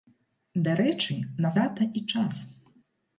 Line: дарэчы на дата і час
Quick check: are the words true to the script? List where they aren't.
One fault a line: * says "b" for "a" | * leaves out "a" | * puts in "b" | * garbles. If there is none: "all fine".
all fine